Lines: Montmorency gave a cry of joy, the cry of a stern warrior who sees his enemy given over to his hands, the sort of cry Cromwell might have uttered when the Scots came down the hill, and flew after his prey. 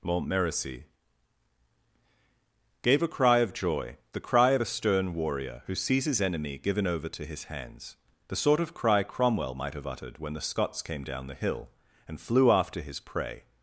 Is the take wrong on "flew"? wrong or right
right